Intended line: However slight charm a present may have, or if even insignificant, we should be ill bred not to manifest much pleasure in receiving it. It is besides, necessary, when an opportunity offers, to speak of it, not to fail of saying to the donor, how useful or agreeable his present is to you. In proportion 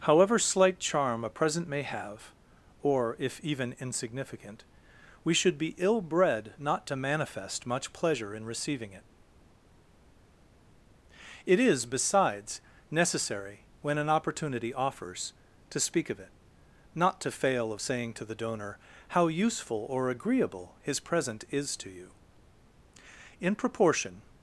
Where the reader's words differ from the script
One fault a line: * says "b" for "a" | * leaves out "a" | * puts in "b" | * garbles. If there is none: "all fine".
all fine